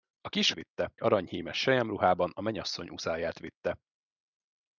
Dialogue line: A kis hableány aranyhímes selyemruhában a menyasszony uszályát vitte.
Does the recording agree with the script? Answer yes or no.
no